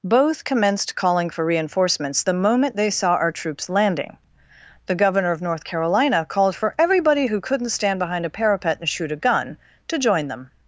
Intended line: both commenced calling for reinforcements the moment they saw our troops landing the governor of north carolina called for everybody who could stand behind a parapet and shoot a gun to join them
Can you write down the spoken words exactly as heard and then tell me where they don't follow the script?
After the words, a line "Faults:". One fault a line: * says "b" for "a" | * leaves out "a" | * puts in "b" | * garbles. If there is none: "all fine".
both commenced calling for reinforcements the moment they saw our troops landing the governor of north carolina called for everybody who couldn't stand behind a parapet and shoot a gun to join them
Faults:
* says "couldn't" for "could"